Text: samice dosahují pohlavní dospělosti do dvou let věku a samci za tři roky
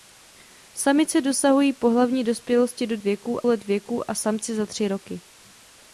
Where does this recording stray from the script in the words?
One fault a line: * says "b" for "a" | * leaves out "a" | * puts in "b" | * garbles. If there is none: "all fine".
* says "věku" for "dvou"